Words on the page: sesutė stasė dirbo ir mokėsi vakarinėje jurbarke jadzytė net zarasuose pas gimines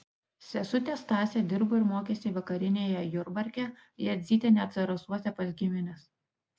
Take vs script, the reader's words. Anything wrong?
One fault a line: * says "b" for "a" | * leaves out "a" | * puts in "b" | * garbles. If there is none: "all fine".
all fine